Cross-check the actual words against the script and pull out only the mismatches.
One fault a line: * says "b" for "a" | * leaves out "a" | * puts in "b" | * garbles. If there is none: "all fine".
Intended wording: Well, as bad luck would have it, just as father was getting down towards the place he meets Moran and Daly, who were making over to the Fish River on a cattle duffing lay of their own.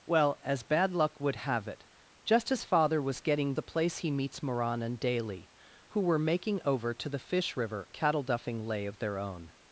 * leaves out "down towards"
* leaves out "on"